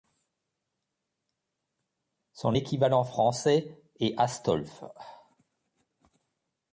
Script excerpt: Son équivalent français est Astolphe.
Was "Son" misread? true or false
false